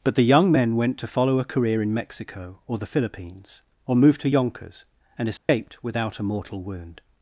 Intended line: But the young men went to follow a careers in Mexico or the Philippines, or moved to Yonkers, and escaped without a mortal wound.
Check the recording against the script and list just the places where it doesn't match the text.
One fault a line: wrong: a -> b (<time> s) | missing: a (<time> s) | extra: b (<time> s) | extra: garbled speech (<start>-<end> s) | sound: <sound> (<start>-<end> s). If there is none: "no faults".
wrong: careers -> career (1.4 s)
sound: dropout (5.4-5.5 s)